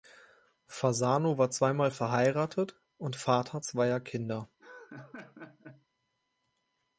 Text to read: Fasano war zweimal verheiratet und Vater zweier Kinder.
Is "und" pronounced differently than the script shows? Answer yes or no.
no